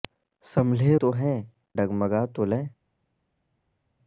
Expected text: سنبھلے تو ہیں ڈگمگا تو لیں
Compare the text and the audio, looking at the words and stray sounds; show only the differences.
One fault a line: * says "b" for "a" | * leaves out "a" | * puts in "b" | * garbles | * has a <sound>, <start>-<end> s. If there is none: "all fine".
all fine